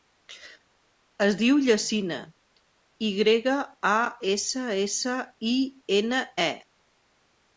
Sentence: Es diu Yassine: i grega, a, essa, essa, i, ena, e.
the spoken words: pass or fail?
pass